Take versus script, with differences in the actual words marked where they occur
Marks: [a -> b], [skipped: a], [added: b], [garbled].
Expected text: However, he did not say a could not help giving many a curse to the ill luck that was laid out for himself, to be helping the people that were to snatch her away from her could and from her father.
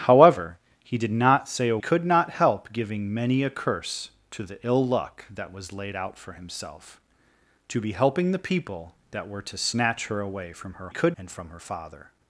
However, he did not say a could not help giving many a curse to the ill luck that was laid out for himself, to be helping the people that were to snatch her away from her could and from her father.